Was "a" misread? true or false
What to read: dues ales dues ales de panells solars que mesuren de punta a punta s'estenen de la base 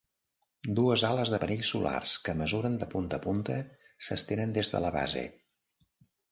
false